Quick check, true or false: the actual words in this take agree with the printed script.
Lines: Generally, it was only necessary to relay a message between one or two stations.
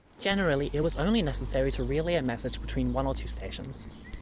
true